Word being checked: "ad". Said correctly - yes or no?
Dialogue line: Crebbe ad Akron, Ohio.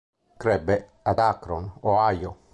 yes